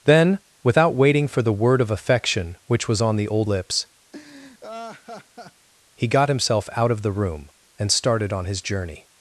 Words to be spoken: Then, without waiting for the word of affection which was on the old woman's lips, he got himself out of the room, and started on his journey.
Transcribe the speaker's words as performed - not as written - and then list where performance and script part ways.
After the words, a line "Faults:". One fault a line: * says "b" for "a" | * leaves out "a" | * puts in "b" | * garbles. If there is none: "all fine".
Then, without waiting for the word of affection which was on the old lips, he got himself out of the room, and started on his journey.
Faults:
* leaves out "woman's"